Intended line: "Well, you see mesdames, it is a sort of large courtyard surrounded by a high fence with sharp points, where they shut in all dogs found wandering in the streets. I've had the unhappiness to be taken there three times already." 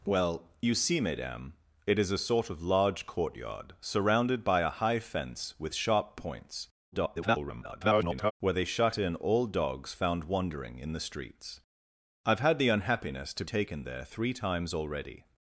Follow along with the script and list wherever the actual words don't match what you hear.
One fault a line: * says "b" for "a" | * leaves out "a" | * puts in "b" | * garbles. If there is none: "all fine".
* garbles
* leaves out "be"